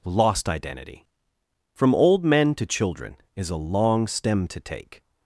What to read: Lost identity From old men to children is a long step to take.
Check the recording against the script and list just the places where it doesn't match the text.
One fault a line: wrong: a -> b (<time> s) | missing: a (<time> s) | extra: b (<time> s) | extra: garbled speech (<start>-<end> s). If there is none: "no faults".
wrong: step -> stem (4.1 s)